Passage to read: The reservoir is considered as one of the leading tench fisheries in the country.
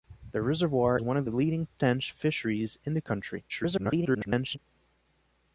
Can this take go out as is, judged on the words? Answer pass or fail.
fail